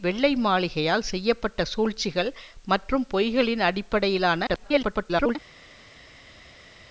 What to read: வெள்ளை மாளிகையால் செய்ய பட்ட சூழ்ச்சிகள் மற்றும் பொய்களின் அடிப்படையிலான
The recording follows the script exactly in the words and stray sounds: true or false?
false